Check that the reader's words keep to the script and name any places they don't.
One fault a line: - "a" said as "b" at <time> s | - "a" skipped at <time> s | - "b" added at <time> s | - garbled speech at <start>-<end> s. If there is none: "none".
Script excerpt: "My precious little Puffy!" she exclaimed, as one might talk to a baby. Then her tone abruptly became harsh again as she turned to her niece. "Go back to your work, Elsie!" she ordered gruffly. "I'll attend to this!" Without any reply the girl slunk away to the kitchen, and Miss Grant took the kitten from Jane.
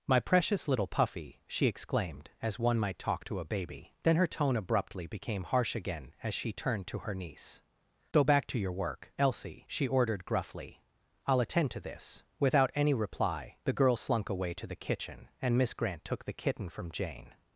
none